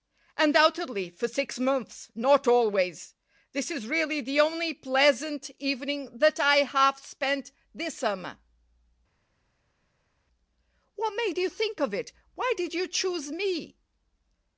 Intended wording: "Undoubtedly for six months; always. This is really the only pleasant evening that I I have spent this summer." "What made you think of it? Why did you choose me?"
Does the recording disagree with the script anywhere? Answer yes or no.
yes